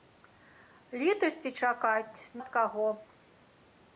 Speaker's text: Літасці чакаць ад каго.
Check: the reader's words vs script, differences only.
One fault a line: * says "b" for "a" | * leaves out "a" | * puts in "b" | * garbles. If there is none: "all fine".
all fine